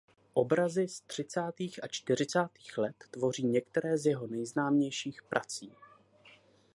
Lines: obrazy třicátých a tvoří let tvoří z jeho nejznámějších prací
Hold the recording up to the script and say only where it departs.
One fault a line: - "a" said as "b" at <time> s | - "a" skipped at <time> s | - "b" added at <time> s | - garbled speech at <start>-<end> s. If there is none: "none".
- "z" added at 0.9 s
- "tvoří" said as "čtyřicátých" at 1.9 s
- "některé" added at 3.5 s